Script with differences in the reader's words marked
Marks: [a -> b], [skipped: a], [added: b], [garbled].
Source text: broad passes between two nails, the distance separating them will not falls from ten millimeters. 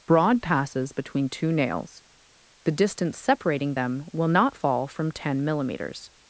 broad passes between two nails, the distance separating them will not [falls -> fall] from ten millimeters.